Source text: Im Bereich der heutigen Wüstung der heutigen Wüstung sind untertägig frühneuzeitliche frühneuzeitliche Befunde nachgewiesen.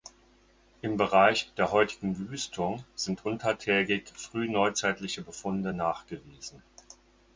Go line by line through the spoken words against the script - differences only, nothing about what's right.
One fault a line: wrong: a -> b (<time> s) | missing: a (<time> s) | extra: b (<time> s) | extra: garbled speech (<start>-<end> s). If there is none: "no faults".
missing: der heutigen Wüstung (2.8 s)
missing: frühneuzeitliche (5.2 s)